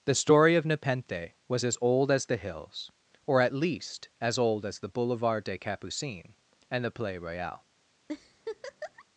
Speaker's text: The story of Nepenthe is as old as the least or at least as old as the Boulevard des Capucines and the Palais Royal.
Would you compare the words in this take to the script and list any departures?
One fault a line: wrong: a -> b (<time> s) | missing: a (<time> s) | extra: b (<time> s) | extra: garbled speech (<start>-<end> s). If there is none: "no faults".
wrong: is -> was (1.5 s)
wrong: least -> hills (2.4 s)